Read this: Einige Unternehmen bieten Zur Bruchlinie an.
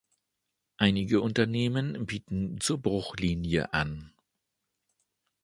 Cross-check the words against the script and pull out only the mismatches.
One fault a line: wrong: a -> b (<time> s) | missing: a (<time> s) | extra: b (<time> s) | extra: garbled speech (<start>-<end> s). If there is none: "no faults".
no faults